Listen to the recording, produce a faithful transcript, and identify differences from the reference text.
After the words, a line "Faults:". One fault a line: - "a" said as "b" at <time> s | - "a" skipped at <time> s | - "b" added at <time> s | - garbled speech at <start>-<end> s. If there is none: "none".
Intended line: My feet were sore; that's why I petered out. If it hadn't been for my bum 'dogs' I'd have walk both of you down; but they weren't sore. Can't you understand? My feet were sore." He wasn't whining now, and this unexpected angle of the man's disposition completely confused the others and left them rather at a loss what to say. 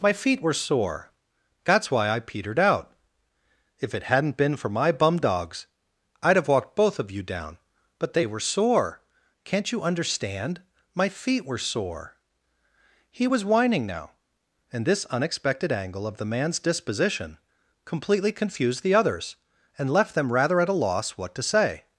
My feet were sore; that's why I petered out. If it hadn't been for my bum 'dogs' I'd have walked both of you down; but they were sore. Can't you understand? My feet were sore." He was whining now, and this unexpected angle of the man's disposition completely confused the others and left them rather at a loss what to say.
Faults:
- "walk" said as "walked" at 6.5 s
- "weren't" said as "were" at 8.2 s
- "wasn't" said as "was" at 13.3 s